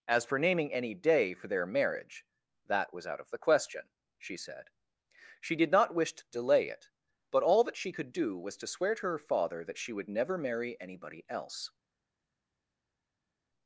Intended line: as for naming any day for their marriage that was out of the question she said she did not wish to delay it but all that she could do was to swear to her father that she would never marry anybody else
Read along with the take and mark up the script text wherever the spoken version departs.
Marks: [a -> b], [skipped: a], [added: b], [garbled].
as for naming any day for their marriage that was out of the question she said she did not wish to delay it but all that she could do was to swear to her father that she would never marry anybody else